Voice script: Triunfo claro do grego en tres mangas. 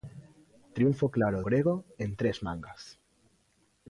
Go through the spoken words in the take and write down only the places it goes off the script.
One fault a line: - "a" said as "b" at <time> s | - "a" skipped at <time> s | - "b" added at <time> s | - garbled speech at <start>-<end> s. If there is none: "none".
- "do" skipped at 1.4 s